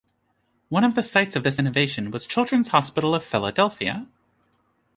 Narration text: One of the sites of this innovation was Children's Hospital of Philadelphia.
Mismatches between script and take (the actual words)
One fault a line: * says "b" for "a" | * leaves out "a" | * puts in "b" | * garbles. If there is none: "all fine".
all fine